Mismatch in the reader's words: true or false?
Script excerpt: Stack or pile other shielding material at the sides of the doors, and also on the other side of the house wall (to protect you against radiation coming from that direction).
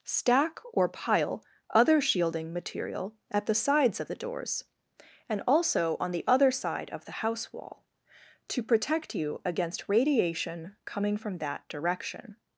false